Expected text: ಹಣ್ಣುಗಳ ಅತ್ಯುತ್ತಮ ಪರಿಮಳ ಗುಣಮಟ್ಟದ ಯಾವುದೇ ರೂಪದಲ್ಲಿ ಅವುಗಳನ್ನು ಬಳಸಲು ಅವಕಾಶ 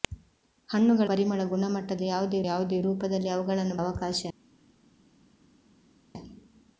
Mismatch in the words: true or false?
true